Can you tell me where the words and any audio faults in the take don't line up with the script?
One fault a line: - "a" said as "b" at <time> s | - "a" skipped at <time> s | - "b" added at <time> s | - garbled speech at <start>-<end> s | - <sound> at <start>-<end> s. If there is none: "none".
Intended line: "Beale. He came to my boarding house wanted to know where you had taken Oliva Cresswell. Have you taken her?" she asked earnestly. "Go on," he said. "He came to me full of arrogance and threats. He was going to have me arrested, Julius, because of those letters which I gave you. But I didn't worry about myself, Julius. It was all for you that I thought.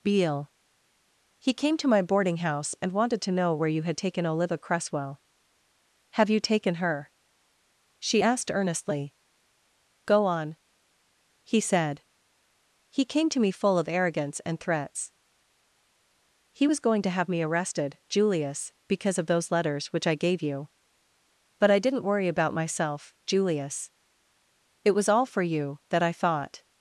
- "and" added at 2.8 s